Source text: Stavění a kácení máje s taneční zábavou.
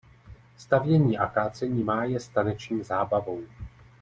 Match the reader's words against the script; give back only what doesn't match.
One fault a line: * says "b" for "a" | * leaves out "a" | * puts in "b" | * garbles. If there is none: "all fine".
all fine